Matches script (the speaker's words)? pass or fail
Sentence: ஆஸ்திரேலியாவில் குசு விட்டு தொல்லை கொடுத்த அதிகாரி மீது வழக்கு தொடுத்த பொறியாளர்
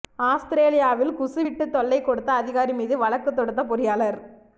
pass